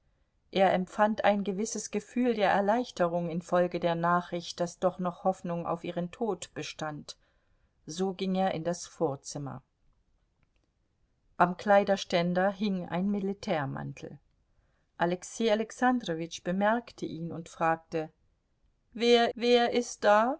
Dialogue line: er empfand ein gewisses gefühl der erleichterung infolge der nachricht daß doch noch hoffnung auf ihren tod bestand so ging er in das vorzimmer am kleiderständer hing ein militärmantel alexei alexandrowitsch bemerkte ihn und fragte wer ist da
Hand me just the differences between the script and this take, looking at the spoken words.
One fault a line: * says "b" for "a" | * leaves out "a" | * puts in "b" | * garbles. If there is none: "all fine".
* puts in "wer"